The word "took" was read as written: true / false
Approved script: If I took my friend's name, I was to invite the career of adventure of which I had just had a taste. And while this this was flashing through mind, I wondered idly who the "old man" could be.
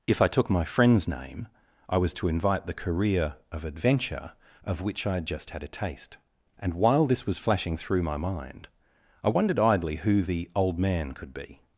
true